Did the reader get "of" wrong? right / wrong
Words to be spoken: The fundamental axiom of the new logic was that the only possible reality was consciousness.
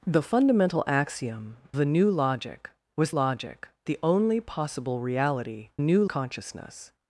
wrong